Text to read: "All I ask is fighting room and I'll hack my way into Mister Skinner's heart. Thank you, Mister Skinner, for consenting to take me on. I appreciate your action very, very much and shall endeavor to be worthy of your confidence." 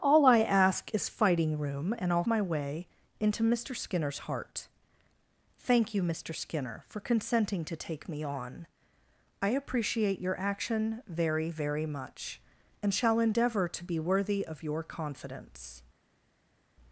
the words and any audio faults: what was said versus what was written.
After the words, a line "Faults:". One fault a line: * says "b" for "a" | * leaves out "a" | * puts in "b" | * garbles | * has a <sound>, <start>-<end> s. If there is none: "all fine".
"All I ask is fighting room and I'll my way into Mister Skinner's heart. Thank you, Mister Skinner, for consenting to take me on. I appreciate your action very, very much and shall endeavor to be worthy of your confidence."
Faults:
* leaves out "hack"